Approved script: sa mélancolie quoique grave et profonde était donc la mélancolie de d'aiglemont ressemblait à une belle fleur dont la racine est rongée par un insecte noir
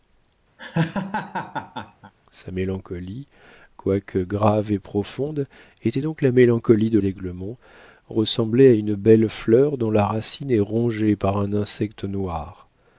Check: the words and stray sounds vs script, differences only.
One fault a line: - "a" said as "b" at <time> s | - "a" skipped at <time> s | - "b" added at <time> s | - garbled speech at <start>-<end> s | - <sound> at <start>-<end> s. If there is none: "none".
- laugh at 0.6-2.1 s